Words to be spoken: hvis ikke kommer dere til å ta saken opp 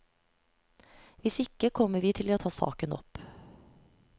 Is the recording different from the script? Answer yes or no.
yes